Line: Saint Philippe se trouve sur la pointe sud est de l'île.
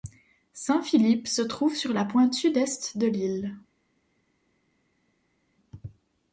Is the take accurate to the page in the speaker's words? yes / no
yes